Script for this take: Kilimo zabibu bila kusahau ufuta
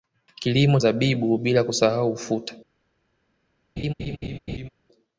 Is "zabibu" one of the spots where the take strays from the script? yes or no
no